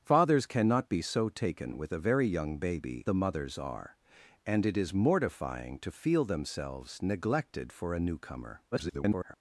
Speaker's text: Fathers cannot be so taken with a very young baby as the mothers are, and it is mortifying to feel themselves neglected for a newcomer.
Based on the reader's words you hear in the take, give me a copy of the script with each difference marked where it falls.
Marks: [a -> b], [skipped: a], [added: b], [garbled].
Fathers cannot be so taken with a very young baby [skipped: as] the mothers are, and it is mortifying to feel themselves neglected for a newcomer. [garbled]